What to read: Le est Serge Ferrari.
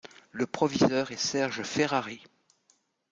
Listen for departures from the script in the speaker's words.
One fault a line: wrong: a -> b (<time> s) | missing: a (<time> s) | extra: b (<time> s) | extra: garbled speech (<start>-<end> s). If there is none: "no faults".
extra: proviseur (0.5 s)